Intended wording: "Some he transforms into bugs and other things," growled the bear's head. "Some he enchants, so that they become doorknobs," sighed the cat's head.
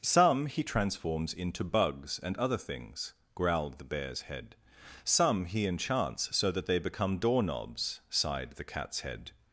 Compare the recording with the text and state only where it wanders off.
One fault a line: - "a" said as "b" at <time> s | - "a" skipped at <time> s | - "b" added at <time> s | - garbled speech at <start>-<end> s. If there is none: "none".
none